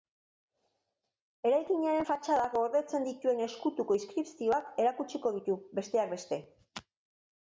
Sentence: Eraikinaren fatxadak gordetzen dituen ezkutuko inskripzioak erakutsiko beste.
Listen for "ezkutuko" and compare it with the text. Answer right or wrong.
right